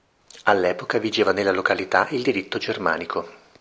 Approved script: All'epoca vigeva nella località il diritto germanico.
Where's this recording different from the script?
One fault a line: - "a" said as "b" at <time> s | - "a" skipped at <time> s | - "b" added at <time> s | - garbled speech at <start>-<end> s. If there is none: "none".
none